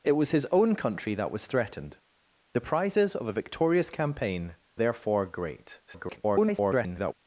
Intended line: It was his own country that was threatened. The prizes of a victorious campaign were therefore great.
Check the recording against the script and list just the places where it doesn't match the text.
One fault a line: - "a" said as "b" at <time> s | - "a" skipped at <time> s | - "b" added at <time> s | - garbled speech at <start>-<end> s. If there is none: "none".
- "were" skipped at 4.6 s
- garbled speech at 5.9-7.1 s